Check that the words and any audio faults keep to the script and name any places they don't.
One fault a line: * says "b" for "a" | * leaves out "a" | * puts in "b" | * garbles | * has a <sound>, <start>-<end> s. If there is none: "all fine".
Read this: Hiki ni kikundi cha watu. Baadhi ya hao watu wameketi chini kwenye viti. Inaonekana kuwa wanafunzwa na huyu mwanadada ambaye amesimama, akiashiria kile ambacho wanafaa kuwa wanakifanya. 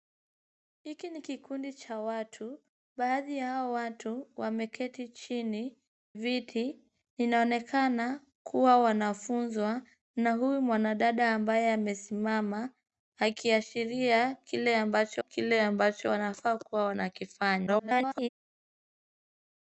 * leaves out "kwenye"
* puts in "kile ambacho"
* garbles